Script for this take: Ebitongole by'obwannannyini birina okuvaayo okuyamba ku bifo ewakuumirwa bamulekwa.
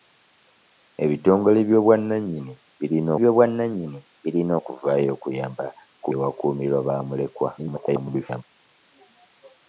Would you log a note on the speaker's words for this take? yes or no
yes